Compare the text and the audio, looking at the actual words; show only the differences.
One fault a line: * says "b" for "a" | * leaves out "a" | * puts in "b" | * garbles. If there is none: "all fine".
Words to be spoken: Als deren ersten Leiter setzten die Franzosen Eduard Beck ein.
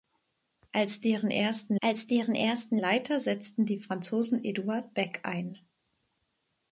* puts in "als deren ersten"